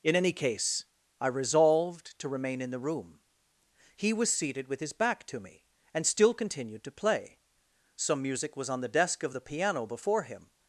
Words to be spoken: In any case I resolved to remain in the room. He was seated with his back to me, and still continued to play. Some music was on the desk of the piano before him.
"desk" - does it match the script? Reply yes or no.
yes